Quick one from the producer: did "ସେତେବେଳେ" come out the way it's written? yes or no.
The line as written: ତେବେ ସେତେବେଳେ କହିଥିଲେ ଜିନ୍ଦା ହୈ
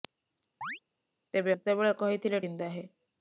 yes